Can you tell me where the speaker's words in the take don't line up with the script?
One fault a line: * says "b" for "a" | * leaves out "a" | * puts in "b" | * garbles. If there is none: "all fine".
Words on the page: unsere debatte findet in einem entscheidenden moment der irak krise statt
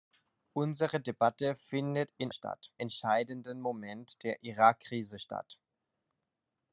* says "statt" for "einem"